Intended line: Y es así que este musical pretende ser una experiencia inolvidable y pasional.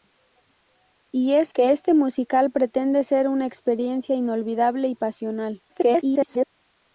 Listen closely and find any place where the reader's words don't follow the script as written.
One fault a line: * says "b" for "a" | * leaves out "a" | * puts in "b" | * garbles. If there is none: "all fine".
* leaves out "así"
* garbles